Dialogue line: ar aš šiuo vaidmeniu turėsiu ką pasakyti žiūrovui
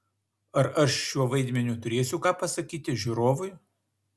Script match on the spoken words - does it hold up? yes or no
yes